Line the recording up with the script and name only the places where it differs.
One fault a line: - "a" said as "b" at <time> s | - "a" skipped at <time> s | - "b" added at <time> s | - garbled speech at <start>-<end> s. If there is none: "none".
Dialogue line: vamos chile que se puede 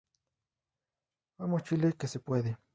none